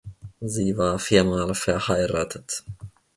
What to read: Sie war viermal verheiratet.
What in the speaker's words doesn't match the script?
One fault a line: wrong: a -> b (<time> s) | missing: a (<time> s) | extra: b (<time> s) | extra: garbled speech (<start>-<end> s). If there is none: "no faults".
no faults